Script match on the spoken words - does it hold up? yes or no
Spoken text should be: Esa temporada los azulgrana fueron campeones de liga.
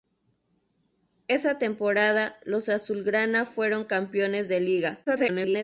no